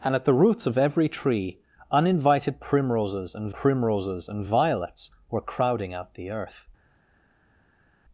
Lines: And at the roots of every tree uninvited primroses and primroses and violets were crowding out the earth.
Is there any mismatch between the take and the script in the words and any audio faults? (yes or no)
no